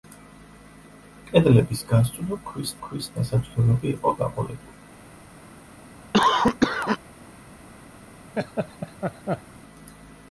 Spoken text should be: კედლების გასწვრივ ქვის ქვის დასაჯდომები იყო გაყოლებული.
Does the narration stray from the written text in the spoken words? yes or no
no